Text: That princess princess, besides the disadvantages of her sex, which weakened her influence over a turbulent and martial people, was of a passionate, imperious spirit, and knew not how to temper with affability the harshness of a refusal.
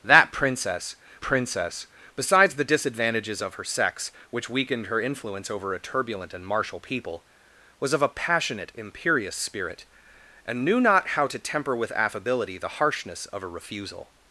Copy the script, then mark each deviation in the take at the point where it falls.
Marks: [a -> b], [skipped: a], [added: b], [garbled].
That princess princess, besides the disadvantages of her sex, which weakened her influence over a turbulent and martial people, was of a passionate, imperious spirit, and knew not how to temper with affability the harshness of a refusal.